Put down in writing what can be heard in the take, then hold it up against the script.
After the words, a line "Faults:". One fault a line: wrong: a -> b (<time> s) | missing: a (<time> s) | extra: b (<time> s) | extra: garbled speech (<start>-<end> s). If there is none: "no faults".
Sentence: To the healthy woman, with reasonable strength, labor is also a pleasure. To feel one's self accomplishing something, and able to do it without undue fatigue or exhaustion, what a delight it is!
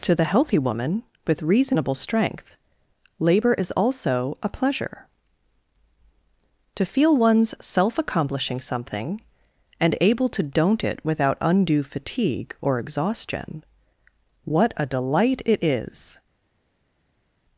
To the healthy woman, with reasonable strength, labor is also a pleasure. To feel one's self accomplishing something, and able to don't it without undue fatigue or exhaustion, what a delight it is!
Faults:
wrong: do -> don't (10.4 s)